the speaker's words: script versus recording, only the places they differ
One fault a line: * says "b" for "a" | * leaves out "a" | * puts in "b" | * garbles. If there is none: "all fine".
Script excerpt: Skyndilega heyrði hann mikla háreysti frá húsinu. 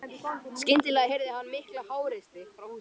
all fine